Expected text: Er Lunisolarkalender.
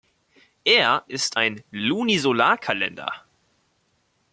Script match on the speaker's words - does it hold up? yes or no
no